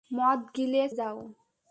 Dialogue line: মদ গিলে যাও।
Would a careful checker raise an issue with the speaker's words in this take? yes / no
no